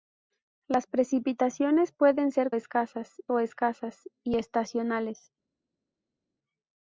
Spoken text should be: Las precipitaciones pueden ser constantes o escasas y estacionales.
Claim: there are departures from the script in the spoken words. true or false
true